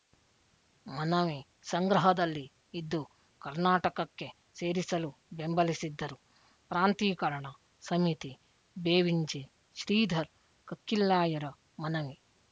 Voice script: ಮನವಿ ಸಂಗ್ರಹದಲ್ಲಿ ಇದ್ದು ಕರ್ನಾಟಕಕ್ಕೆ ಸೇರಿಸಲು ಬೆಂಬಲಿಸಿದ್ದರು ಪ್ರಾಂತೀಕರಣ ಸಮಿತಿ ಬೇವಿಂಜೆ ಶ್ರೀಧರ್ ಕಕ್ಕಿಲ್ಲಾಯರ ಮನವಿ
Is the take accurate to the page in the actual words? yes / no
yes